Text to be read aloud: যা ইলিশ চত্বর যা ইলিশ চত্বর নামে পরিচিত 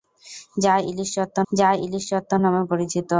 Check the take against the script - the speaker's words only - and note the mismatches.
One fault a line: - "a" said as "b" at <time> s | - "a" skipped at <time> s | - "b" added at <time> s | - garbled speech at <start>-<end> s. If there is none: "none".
none